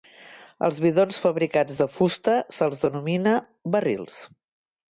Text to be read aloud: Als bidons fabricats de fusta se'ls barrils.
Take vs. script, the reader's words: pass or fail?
fail